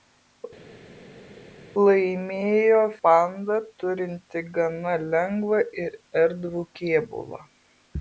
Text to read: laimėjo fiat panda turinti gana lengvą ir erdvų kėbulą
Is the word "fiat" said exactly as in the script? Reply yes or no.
no